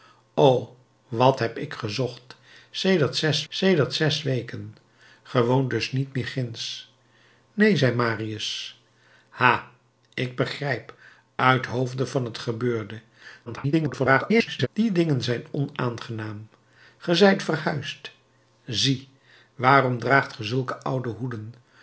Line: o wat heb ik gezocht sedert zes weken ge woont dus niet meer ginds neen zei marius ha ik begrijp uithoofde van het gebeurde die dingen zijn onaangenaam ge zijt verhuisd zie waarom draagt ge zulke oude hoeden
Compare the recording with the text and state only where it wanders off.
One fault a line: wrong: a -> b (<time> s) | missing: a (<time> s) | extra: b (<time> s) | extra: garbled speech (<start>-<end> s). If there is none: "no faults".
extra: sedert zes (3.5 s)
extra: garbled speech (13.5-14.7 s)